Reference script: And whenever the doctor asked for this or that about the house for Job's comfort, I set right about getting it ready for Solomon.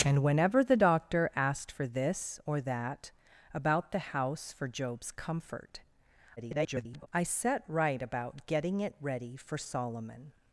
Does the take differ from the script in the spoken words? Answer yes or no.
yes